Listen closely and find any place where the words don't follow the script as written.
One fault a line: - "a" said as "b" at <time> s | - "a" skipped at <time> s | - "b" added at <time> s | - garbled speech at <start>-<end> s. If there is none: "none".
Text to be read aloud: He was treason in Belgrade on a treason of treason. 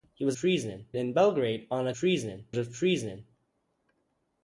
none